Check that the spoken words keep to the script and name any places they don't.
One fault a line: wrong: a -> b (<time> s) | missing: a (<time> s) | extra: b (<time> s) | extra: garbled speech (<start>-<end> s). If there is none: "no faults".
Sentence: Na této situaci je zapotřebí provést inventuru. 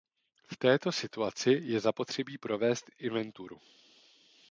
wrong: Na -> V (0.4 s)